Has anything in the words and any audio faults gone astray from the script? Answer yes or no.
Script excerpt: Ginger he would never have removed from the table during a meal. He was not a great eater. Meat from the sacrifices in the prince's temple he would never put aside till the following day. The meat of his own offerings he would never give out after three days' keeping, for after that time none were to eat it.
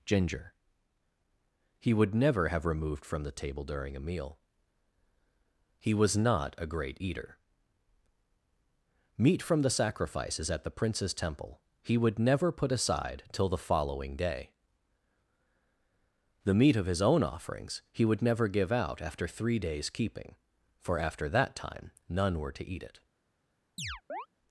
yes